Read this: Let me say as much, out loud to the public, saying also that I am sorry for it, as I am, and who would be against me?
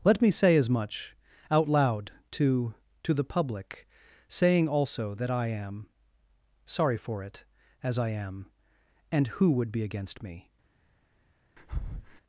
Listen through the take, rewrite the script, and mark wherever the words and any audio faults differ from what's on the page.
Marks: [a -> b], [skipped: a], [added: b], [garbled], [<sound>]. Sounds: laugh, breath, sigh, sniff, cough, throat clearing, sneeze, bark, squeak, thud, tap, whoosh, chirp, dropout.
Let me say as much, out loud to [added: to] the public, saying also that I am sorry for it, as I am, and who would be against me? [breath]